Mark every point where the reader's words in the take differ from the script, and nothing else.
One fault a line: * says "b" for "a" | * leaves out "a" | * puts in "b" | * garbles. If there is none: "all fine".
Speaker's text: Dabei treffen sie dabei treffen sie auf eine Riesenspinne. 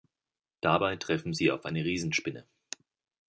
* leaves out "dabei treffen sie"